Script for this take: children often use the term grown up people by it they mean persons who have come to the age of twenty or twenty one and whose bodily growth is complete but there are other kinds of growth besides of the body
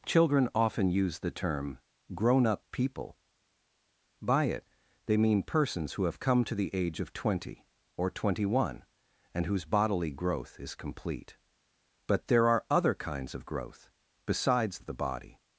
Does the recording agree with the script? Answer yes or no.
yes